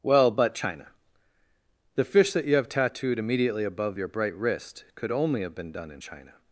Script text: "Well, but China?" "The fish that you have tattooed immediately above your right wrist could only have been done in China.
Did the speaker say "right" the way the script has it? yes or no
no